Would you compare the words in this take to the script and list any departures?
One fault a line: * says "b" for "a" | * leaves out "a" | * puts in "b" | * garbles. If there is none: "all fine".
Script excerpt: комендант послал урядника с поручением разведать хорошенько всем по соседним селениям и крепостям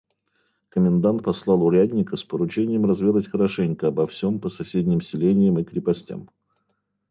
* puts in "обо"